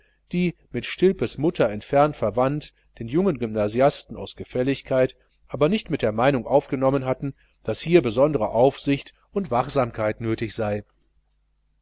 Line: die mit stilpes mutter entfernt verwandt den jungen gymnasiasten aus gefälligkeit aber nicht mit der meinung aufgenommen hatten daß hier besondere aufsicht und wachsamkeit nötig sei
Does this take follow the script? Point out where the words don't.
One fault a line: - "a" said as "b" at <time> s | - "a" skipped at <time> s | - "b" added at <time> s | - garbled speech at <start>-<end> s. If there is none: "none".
none